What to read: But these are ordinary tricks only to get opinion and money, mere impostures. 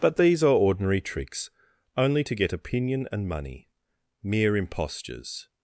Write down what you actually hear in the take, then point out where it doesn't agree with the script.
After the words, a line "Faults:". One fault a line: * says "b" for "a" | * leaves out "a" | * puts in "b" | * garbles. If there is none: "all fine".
But these are ordinary tricks only to get opinion and money, mere impostures.
Faults:
all fine